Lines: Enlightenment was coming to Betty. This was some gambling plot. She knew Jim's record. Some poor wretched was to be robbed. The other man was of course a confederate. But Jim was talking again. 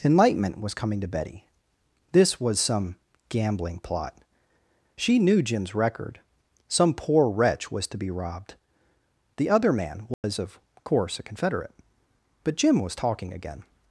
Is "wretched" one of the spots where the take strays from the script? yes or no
yes